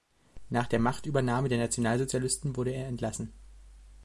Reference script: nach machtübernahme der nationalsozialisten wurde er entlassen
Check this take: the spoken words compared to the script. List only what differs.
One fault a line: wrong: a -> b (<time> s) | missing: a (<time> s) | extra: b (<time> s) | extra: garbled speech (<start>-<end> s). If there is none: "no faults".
extra: der (0.7 s)